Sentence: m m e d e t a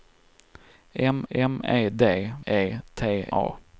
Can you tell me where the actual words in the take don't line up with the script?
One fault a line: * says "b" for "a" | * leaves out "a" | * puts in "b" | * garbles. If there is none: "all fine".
all fine